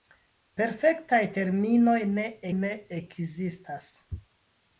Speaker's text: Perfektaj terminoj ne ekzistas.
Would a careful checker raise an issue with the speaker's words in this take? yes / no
yes